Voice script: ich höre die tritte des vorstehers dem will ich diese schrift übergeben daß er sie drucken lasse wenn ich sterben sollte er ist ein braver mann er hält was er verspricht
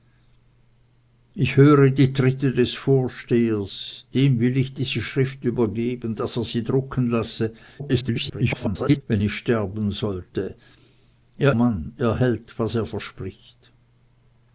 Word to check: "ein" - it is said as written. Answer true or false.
false